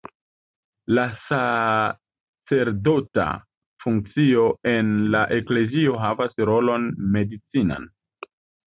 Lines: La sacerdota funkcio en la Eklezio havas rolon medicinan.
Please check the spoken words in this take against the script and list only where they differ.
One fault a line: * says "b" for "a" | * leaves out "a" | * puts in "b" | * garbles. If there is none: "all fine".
all fine